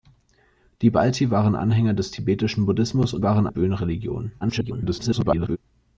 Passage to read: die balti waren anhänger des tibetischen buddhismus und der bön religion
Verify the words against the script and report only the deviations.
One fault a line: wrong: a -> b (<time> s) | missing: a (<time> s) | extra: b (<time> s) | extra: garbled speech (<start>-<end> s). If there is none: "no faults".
wrong: der -> waren (3.2 s)
extra: garbled speech (4.4-5.6 s)